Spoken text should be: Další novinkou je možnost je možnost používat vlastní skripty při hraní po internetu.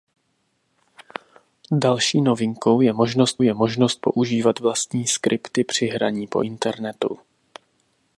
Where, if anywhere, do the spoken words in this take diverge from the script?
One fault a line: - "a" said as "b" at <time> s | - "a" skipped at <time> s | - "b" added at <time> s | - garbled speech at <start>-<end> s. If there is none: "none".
none